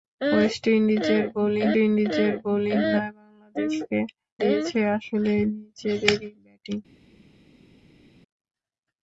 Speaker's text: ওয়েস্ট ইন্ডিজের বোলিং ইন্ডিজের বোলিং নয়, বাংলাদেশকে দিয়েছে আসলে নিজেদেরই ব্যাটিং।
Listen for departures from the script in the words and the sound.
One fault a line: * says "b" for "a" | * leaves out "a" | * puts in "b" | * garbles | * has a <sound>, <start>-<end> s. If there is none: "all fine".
all fine